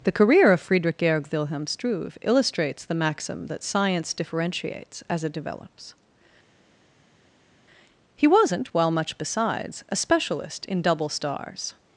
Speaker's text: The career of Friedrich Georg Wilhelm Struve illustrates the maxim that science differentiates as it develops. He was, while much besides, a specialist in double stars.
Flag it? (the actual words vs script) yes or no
yes